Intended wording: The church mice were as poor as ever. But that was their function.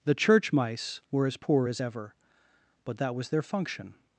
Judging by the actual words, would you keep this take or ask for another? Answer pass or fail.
pass